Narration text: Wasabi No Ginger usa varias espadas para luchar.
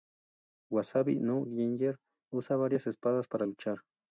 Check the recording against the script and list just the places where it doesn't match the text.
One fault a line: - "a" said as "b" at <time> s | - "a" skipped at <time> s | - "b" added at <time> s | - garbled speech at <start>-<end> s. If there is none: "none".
none